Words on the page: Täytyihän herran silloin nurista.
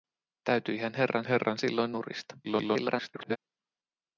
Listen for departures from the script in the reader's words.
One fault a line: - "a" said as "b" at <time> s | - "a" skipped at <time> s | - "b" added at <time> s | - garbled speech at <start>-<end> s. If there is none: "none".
- "herran" added at 1.2 s
- garbled speech at 2.4-3.4 s